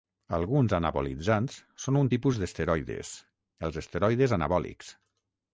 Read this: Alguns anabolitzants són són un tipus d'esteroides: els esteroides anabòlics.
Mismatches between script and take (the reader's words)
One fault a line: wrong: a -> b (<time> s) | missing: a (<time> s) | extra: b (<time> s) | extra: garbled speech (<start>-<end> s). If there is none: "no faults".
missing: són (2.0 s)